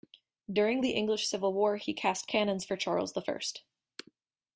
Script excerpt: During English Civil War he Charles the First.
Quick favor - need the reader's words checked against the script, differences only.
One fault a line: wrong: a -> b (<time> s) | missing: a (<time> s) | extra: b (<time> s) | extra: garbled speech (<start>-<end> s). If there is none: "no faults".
extra: the (0.8 s)
extra: cast cannons for (1.9 s)